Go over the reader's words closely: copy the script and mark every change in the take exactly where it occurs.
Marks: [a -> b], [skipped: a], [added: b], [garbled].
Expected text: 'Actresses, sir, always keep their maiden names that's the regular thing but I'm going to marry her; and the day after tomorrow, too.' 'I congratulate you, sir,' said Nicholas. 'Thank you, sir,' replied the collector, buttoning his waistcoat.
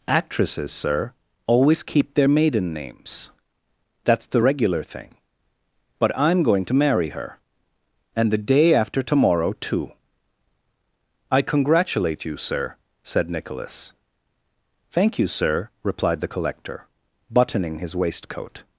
'Actresses, sir, always keep their maiden names that's the regular thing but I'm going to marry her; and the day after tomorrow, too.' 'I congratulate you, sir,' said Nicholas. 'Thank you, sir,' replied the collector, buttoning his waistcoat.